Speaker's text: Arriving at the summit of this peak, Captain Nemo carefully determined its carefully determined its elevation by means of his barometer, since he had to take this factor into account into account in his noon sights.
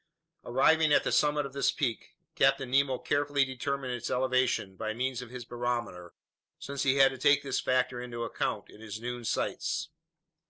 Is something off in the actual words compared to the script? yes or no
yes